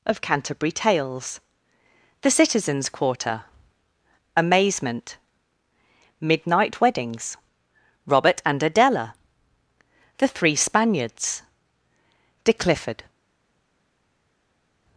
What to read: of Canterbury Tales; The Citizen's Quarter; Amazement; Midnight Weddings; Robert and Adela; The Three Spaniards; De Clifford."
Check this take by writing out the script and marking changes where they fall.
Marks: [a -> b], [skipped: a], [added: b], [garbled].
of Canterbury Tales; The Citizen's Quarter; Amazement; Midnight Weddings; Robert and Adela; The Three Spaniards; De Clifford."